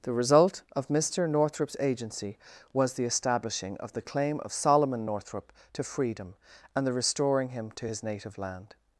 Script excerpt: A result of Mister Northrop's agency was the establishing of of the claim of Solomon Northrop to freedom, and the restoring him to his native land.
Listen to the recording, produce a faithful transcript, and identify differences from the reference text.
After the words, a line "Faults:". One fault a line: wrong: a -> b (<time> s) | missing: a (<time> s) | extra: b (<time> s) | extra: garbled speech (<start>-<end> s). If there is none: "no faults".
The result of Mister Northrop's agency was the establishing of the claim of Solomon Northrop to freedom, and the restoring him to his native land.
Faults:
wrong: A -> The (0.0 s)
missing: of (3.9 s)